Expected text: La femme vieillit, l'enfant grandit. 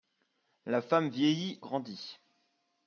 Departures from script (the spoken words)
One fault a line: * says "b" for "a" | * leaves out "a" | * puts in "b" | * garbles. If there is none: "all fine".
* leaves out "l'enfant"